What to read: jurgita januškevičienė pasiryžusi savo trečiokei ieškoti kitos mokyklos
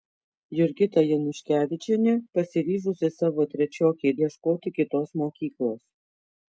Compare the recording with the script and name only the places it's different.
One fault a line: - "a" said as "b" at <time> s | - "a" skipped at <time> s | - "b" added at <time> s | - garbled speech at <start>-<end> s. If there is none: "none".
none